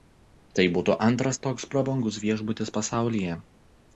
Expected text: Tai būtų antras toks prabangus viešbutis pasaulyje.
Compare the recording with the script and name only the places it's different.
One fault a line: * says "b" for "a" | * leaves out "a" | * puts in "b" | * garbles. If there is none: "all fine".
all fine